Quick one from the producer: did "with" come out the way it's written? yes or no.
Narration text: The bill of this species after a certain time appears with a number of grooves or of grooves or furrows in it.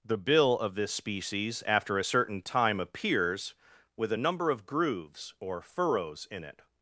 yes